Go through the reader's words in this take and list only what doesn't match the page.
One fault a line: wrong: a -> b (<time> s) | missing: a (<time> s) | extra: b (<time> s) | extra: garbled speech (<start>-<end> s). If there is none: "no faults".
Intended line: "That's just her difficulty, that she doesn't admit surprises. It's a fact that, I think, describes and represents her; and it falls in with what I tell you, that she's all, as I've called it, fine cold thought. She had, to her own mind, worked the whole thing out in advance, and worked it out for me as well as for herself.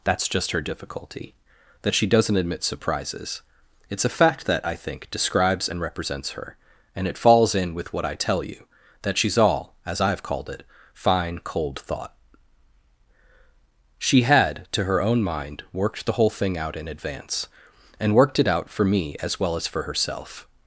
no faults